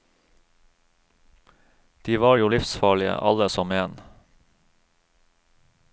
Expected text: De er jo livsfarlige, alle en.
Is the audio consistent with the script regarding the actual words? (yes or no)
no